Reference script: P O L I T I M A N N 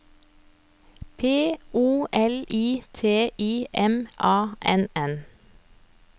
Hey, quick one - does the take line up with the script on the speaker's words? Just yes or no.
yes